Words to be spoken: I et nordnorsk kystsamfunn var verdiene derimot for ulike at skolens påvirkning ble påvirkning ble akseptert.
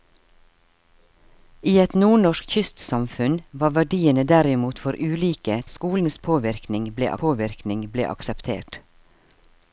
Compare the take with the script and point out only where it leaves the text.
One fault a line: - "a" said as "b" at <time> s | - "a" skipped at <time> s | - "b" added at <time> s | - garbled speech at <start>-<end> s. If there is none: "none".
none